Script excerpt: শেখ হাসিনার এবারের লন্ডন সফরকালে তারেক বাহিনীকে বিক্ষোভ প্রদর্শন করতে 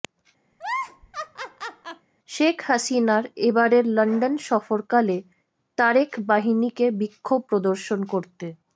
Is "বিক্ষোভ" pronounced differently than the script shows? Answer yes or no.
no